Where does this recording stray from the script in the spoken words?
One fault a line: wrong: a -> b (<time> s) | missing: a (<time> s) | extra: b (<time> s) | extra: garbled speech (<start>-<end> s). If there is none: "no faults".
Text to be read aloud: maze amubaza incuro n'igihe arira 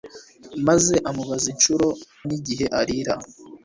no faults